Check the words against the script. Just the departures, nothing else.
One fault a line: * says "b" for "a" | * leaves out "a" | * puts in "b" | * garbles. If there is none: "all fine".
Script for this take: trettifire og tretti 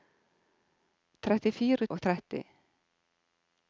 all fine